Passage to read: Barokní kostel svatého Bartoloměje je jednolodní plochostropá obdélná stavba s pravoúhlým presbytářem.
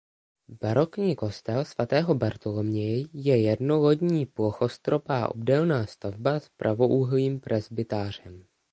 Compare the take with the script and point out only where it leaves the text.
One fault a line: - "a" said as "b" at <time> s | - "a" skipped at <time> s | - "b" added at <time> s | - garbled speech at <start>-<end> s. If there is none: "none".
none